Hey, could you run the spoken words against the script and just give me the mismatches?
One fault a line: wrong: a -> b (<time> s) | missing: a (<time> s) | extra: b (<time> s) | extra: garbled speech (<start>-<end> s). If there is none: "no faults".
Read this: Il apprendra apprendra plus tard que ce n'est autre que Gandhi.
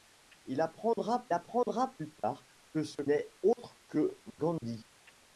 no faults